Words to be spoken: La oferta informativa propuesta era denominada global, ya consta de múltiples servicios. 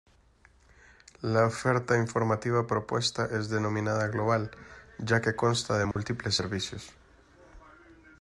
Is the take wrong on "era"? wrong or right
wrong